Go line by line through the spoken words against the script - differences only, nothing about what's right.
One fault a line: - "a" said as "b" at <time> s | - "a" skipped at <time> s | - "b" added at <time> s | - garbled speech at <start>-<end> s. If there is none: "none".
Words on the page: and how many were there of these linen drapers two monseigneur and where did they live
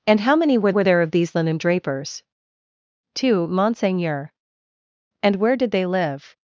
- "were" added at 0.7 s